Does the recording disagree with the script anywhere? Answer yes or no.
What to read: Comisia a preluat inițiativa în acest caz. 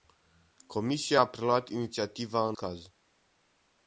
yes